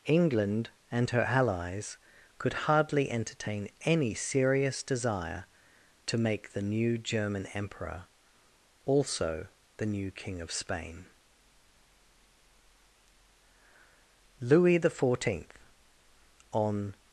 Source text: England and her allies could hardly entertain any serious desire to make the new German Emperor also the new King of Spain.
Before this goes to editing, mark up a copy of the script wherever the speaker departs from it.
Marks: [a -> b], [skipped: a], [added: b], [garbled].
England and her allies could hardly entertain any serious desire to make the new German Emperor also the new King of Spain. [added: Louis the Fourteenth on]